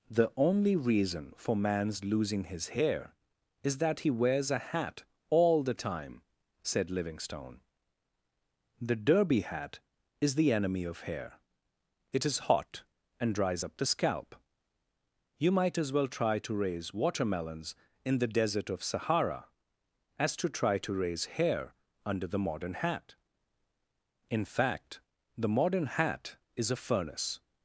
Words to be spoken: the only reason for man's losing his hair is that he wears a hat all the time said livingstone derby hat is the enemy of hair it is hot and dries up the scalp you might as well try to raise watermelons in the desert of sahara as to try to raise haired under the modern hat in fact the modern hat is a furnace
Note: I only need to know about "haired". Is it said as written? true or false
false